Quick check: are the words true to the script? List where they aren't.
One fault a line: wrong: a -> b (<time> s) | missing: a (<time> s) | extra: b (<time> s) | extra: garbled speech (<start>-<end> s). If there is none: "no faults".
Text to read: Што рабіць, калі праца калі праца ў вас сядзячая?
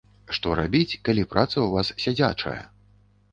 missing: калі праца (1.5 s)